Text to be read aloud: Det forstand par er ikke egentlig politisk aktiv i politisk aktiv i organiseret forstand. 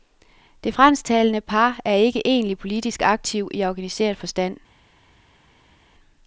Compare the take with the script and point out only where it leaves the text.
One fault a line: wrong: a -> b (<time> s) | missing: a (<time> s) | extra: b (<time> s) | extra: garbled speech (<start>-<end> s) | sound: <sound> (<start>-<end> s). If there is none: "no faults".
wrong: forstand -> fransktalende (0.7 s)
missing: politisk aktiv i (3.6 s)